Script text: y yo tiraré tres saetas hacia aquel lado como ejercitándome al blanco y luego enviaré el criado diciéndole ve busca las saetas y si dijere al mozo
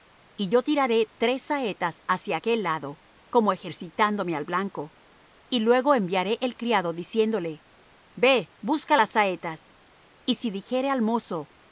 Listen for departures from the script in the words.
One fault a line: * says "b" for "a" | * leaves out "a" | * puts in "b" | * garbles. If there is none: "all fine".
all fine